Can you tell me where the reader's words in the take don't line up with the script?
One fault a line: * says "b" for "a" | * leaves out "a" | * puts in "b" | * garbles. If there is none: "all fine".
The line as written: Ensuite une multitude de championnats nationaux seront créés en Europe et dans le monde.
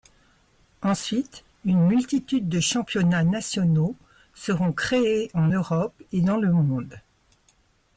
all fine